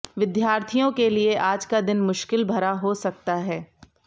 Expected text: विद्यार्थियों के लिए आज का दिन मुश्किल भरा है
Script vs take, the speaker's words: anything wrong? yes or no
yes